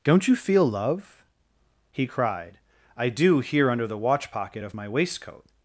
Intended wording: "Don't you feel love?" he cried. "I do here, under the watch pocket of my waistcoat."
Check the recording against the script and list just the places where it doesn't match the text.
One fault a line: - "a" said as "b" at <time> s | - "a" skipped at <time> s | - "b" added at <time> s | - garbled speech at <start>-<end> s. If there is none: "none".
none